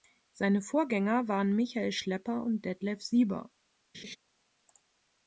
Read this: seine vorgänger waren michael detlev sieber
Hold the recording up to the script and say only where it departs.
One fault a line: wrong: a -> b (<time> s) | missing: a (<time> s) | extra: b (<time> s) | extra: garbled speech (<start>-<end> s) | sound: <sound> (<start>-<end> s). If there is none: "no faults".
extra: schlepper und (1.9 s)
sound: laugh (3.9-4.2 s)